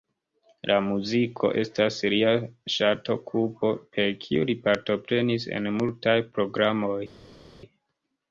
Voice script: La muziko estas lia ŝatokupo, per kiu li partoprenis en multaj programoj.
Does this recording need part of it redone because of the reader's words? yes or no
no